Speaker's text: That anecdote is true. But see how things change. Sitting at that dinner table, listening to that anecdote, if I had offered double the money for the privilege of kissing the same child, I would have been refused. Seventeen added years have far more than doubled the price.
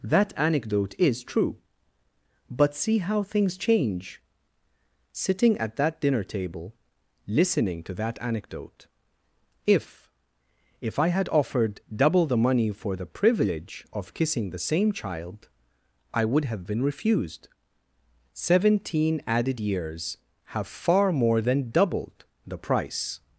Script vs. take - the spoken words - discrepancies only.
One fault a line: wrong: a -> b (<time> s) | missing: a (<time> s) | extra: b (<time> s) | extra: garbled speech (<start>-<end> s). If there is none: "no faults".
extra: if (10.8 s)